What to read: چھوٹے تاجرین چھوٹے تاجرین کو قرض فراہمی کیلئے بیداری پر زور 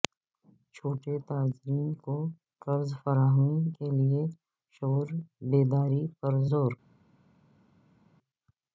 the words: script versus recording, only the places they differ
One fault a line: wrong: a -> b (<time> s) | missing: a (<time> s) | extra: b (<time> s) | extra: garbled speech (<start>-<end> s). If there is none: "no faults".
missing: چھوٹے تاجرین (1.9 s)
extra: شعور (4.7 s)